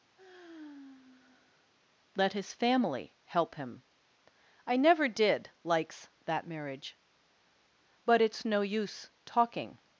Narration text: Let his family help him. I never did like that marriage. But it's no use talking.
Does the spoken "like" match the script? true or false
false